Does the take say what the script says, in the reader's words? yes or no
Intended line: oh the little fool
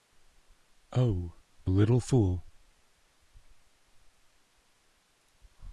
yes